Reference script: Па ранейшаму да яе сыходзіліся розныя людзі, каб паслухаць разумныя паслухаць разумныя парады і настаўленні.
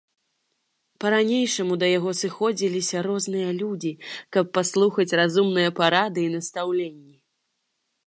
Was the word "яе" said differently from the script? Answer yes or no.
yes